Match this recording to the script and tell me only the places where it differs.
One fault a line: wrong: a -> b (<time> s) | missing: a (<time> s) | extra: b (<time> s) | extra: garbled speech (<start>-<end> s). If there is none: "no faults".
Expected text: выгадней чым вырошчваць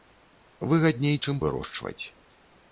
no faults